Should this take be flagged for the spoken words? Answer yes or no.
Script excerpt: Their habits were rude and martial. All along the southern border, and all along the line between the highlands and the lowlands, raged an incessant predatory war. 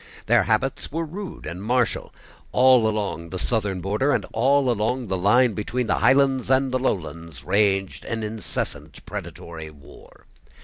no